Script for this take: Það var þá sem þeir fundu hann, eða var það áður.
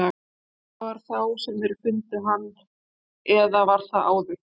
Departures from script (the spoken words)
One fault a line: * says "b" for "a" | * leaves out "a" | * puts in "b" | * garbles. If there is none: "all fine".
all fine